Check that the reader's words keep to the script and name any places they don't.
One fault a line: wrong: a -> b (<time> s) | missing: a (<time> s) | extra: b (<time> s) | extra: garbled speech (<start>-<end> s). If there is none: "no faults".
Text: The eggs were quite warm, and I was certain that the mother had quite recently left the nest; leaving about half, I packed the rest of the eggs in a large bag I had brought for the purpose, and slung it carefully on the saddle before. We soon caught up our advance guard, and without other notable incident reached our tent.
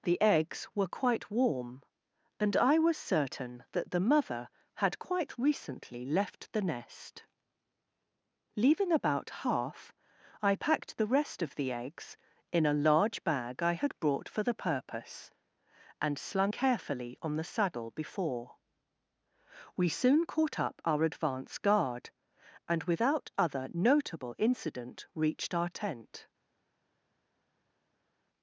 missing: it (16.5 s)